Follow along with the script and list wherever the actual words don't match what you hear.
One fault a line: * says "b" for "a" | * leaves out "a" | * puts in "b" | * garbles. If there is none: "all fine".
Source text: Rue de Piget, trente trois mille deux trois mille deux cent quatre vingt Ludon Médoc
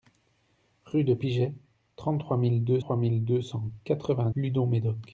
all fine